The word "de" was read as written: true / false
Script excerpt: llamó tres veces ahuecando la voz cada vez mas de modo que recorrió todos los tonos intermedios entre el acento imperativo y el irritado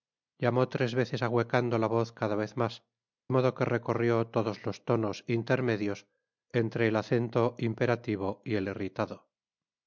false